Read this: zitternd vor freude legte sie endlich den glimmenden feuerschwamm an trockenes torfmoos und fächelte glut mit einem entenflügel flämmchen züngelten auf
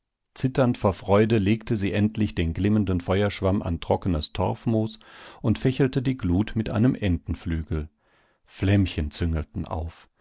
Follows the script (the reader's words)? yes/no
no